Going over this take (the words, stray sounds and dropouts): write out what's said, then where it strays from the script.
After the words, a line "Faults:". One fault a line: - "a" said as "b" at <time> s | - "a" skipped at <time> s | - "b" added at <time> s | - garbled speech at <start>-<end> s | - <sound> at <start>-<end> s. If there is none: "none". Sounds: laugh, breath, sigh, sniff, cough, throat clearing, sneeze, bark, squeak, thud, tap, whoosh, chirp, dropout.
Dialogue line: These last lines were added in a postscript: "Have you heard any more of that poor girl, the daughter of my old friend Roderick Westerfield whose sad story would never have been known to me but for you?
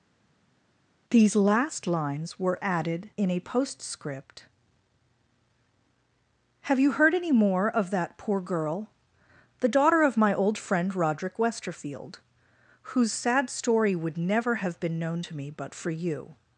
These last lines were added in a postscript: "Have you heard any more of that poor girl, the daughter of my old friend Roderick Westerfield whose sad story would never have been known to me but for you?
Faults:
none